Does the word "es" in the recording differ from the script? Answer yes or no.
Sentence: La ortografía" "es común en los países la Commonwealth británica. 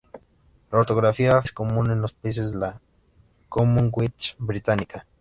no